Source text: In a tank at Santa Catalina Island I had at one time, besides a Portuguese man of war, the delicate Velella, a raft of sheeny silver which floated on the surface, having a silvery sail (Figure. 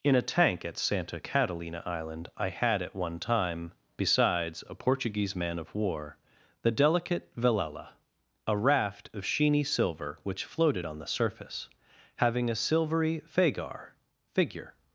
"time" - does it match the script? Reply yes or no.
yes